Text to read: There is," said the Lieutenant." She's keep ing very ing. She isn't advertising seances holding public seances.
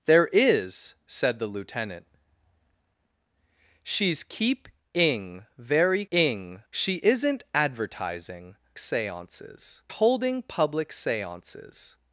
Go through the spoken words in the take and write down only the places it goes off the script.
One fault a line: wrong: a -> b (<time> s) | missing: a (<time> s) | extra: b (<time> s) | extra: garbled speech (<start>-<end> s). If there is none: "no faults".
no faults